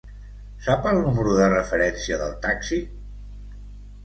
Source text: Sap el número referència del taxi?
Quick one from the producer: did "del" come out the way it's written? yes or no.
yes